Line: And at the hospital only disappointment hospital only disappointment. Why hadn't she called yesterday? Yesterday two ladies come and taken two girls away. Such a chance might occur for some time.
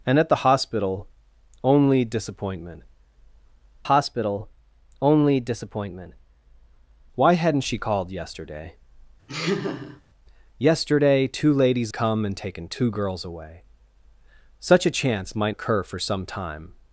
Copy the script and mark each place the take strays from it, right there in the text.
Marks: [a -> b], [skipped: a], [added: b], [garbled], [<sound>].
And at the hospital only disappointment hospital only disappointment. Why hadn't she called yesterday? [laugh] Yesterday two ladies come and taken two girls away. Such a chance might occur for some time.